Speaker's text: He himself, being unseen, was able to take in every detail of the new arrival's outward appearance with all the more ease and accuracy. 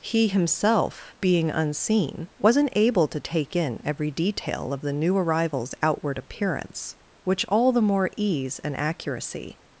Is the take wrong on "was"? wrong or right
wrong